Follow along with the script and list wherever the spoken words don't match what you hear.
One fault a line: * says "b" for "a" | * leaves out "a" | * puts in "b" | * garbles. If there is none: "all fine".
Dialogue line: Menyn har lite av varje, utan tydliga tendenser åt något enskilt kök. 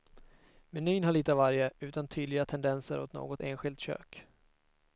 all fine